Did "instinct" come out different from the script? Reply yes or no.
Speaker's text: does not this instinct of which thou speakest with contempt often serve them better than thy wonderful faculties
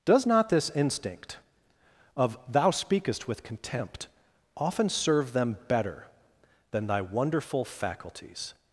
no